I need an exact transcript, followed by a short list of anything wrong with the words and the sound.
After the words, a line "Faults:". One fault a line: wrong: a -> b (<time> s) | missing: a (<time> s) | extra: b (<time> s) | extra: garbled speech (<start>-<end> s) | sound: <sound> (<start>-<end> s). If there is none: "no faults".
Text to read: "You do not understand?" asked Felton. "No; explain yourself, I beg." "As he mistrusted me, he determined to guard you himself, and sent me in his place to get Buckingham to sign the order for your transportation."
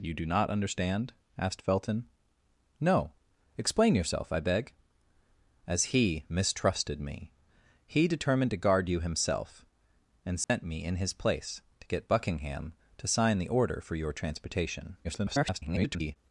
"You do not understand?" asked Felton. "No; explain yourself, I beg." "As he mistrusted me, he determined to guard you himself, and sent me in his place to get Buckingham to sign the order for your transportation." [garbled]
Faults:
sound: dropout (10.4-10.5 s)
extra: garbled speech (15.0-16.2 s)